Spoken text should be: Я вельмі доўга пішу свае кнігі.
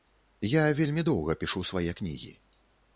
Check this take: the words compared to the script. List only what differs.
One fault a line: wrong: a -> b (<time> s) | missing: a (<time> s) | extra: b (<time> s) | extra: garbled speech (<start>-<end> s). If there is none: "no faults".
no faults